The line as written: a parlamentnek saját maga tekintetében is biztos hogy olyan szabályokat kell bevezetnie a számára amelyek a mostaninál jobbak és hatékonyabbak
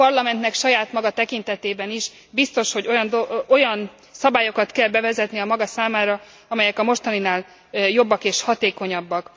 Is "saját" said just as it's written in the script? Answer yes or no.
yes